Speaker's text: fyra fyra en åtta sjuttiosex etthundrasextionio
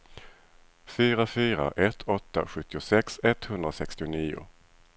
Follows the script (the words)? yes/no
no